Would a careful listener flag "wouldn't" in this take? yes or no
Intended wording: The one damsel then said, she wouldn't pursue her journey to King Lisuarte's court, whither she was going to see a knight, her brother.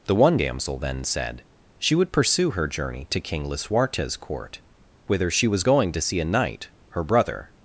yes